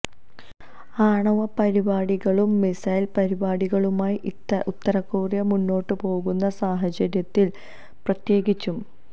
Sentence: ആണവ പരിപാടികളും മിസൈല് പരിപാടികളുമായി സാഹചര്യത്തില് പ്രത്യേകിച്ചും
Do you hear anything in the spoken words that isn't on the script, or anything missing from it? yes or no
yes